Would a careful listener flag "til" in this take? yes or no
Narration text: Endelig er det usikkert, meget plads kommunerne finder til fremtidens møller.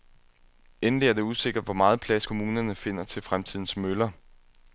no